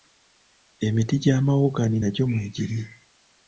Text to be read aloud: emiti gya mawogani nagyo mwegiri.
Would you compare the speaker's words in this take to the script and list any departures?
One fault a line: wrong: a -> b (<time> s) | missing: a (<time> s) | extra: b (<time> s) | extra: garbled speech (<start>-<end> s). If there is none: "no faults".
no faults